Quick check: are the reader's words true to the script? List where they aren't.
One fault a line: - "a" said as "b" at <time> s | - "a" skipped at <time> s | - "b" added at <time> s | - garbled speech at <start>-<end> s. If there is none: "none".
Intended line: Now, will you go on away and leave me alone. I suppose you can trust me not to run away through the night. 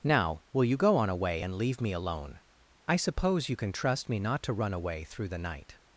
none